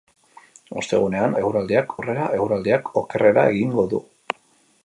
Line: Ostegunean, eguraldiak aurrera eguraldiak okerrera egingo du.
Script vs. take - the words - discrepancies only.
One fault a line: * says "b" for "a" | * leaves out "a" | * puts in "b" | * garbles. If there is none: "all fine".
all fine